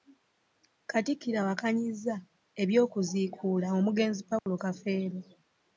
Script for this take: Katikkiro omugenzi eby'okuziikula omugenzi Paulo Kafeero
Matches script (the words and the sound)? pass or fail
fail